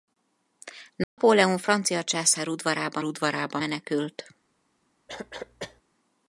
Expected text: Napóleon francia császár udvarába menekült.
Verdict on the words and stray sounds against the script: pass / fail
fail